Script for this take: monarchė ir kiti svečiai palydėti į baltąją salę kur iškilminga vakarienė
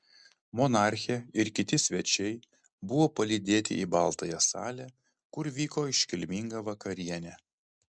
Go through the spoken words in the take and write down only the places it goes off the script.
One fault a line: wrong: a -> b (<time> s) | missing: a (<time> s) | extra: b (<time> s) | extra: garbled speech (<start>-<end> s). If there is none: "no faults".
extra: buvo (2.9 s)
extra: vyko (5.6 s)